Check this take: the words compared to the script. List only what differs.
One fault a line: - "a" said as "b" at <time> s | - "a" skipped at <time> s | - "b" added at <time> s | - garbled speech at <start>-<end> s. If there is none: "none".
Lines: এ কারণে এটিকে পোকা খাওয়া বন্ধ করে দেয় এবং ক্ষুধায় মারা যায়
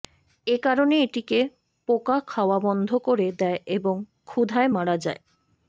none